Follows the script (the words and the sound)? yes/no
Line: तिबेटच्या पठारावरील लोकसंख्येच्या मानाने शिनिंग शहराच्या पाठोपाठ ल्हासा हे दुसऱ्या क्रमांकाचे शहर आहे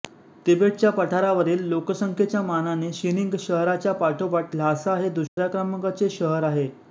no